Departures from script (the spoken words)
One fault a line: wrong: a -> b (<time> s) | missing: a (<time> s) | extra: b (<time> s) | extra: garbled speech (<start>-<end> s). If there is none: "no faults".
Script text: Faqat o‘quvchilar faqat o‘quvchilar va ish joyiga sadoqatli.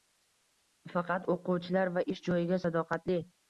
missing: faqat o‘quvchilar (1.9 s)